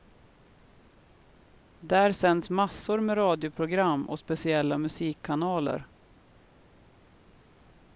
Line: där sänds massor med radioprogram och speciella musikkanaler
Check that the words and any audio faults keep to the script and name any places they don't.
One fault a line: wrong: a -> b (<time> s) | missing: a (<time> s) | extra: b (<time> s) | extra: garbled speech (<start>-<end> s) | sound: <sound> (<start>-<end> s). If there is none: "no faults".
no faults